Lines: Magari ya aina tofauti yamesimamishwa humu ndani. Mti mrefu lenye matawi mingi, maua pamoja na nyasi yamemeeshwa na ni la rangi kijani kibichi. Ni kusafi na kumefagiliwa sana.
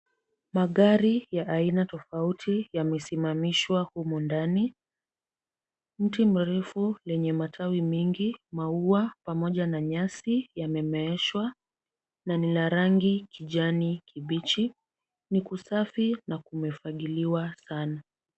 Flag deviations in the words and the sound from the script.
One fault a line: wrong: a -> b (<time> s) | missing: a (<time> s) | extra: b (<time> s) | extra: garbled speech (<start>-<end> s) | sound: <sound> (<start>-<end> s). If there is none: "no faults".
no faults